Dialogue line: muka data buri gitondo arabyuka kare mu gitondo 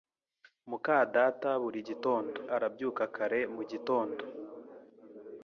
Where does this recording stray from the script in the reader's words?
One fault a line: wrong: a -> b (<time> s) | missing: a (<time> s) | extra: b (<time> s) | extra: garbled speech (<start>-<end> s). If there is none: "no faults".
no faults